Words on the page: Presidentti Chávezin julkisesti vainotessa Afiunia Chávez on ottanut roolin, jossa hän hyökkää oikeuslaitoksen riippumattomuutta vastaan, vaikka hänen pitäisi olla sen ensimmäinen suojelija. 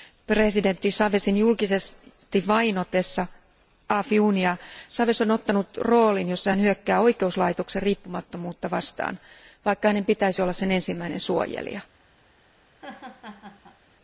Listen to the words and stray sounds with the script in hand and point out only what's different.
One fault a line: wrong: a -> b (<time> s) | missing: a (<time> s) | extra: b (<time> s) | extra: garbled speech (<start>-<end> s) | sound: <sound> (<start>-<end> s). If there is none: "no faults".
sound: laugh (12.7-13.8 s)